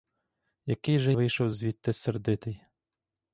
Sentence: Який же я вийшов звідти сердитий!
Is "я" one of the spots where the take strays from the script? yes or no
yes